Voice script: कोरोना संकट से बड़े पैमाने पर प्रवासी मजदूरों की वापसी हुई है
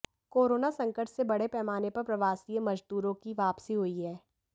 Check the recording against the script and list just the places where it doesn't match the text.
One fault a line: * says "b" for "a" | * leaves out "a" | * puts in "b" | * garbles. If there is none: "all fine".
all fine